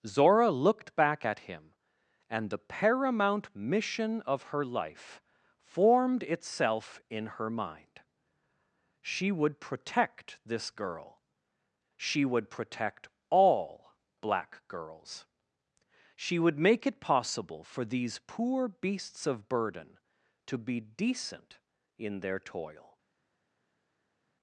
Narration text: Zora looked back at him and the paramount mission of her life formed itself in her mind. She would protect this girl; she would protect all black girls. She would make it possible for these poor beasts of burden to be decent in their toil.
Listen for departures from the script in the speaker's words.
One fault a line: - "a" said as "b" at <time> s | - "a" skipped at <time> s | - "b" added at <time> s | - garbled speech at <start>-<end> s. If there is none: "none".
none